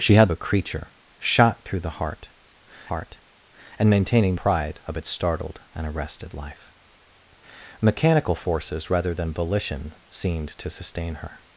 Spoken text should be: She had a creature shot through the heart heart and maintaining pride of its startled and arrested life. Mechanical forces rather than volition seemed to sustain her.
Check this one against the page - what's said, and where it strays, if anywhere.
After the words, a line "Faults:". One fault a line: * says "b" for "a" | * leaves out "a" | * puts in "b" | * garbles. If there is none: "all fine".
She had a creature shot through the heart heart and maintaining pride of its startled and arrested life. Mechanical forces rather than volition seemed to sustain her.
Faults:
all fine